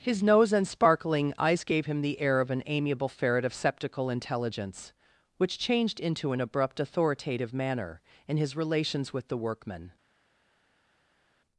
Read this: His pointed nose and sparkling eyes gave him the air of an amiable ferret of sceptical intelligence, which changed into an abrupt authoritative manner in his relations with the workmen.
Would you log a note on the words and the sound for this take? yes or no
yes